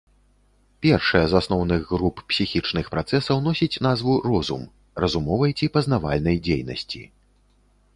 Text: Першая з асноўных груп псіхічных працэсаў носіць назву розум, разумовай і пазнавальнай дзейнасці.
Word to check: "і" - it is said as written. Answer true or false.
false